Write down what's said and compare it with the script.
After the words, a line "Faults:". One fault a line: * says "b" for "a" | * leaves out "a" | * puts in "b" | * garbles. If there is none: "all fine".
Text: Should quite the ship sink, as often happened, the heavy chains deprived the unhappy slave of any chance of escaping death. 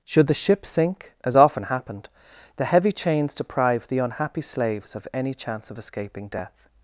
Should the ship sink, as often happened, the heavy chains deprived the unhappy slaves of any chance of escaping death.
Faults:
* leaves out "quite"
* says "slaves" for "slave"